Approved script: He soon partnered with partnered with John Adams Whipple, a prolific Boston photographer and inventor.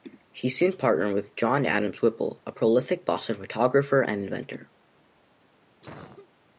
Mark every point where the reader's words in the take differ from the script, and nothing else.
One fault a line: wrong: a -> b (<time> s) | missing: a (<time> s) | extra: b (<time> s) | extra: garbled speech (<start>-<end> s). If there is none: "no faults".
missing: partnered with (1.4 s)